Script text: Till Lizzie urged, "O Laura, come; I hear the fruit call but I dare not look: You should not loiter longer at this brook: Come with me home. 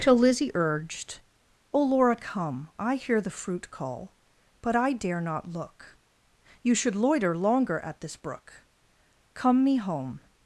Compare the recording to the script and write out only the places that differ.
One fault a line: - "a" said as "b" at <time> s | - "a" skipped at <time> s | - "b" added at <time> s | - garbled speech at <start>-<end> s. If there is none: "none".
- "not" skipped at 7.0 s
- "with" skipped at 9.6 s